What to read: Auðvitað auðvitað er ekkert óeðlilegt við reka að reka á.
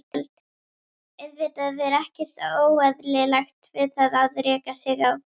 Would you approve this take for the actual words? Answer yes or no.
no